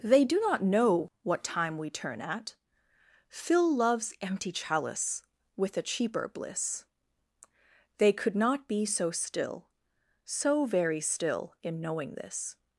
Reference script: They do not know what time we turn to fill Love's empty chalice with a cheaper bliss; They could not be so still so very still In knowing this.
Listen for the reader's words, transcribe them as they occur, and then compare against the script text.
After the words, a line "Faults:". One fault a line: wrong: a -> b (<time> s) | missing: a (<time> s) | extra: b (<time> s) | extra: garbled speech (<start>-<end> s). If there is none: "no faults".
They do not know what time we turn at fill Love's empty chalice with a cheaper bliss; They could not be so still so very still In knowing this.
Faults:
wrong: to -> at (2.2 s)